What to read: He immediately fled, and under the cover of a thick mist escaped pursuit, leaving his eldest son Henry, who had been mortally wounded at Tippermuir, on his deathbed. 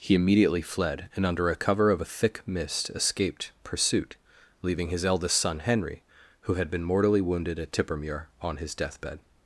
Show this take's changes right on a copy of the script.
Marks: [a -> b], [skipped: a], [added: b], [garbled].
He immediately fled, and under [the -> a] cover of a thick mist escaped pursuit, leaving his eldest son Henry, who had been mortally wounded at Tippermuir, on his deathbed.